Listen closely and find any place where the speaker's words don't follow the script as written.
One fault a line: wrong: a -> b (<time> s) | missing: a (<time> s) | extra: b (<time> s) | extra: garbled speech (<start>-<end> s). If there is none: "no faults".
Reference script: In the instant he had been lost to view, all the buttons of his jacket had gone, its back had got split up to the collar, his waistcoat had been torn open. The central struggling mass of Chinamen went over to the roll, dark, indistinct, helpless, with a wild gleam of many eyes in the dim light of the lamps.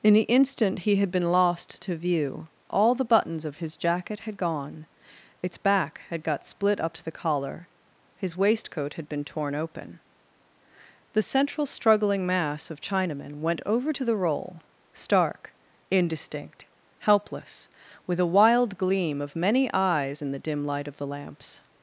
wrong: dark -> stark (14.9 s)